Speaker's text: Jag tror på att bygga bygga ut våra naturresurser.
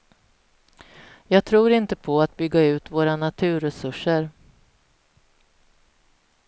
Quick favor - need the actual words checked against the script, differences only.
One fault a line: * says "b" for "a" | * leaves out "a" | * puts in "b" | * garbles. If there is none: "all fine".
* puts in "inte"
* leaves out "bygga"